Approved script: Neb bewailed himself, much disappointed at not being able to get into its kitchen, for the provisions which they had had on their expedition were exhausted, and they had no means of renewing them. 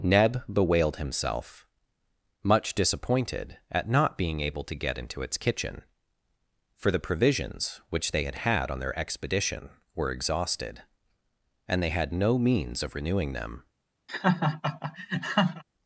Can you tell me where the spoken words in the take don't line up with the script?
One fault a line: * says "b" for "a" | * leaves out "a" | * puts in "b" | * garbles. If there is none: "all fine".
all fine